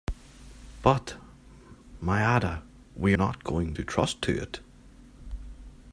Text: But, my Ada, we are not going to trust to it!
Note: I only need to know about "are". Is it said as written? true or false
false